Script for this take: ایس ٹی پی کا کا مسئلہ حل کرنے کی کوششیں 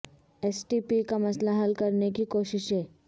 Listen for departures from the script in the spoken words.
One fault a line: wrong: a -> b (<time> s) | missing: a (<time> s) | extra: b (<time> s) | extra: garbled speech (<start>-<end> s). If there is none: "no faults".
missing: کا (1.2 s)